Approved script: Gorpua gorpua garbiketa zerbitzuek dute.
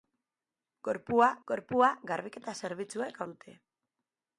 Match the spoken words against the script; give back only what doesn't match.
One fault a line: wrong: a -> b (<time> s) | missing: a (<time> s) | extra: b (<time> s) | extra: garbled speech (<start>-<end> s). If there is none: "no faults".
no faults